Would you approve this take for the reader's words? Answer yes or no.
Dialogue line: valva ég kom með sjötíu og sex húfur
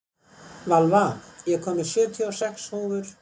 yes